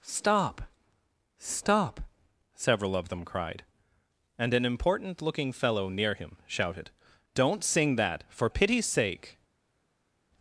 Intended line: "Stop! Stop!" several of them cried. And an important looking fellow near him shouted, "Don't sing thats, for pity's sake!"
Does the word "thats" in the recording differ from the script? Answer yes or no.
yes